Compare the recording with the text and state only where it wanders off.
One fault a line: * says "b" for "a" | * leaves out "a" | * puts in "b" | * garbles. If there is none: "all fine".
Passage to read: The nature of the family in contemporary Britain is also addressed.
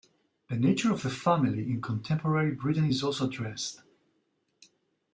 all fine